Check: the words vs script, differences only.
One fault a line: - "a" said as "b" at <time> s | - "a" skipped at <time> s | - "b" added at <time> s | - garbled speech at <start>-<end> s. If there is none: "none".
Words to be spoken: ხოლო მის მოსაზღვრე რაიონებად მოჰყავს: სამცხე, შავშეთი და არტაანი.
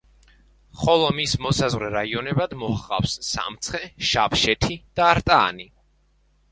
none